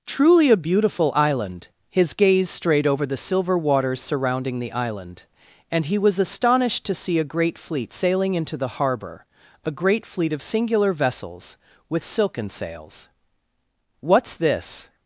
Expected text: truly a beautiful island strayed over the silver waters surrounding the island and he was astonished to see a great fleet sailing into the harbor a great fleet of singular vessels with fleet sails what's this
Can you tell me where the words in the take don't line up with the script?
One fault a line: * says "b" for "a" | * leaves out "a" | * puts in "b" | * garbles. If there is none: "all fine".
* puts in "his gaze"
* says "silken" for "fleet"